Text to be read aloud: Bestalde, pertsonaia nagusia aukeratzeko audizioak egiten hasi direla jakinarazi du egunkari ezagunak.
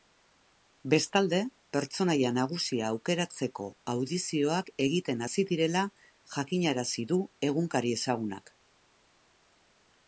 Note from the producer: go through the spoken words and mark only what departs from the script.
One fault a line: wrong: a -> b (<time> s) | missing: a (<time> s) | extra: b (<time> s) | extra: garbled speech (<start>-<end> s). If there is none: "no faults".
no faults